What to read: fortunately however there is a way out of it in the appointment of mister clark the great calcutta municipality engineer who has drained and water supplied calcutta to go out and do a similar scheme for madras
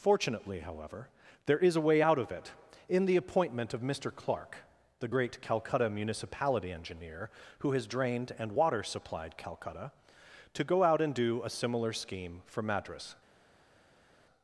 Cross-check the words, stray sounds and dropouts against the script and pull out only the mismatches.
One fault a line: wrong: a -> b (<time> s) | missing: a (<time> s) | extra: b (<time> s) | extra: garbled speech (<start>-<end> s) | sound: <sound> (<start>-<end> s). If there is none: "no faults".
no faults